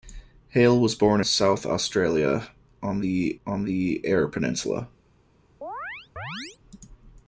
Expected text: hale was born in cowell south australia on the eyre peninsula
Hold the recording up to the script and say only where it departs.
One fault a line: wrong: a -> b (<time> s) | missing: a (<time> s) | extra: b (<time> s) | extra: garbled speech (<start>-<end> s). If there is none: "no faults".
wrong: in cowell south australia -> south australia on the (1.2 s)